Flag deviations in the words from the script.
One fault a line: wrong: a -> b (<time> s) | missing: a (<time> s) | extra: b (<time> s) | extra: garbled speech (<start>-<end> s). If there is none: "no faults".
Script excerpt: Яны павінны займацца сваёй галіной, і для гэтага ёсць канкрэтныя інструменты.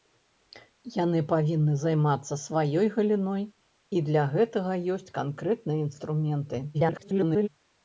extra: garbled speech (6.7-7.5 s)